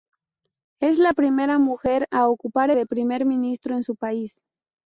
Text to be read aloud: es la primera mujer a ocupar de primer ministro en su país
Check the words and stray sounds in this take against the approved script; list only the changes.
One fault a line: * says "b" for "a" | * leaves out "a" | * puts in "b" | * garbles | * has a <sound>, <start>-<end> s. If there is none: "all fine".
all fine